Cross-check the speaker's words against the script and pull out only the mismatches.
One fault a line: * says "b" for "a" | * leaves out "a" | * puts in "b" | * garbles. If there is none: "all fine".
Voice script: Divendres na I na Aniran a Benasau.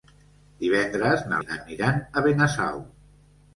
all fine